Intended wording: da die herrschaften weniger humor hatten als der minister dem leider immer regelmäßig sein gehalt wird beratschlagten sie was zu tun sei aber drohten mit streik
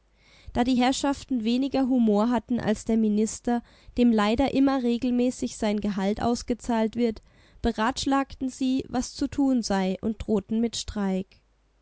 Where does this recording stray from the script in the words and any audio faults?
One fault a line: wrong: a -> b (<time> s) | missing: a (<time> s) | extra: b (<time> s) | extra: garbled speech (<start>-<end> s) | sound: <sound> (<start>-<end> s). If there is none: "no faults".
extra: ausgezahlt (6.2 s)
wrong: aber -> und (10.0 s)